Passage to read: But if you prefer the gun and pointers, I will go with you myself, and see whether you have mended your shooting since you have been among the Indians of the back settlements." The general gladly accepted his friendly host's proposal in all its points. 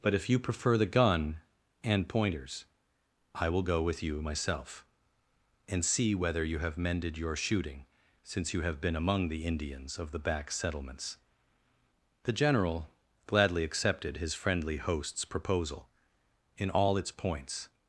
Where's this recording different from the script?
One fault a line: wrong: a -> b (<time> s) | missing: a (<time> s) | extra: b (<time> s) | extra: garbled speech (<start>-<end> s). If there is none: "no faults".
no faults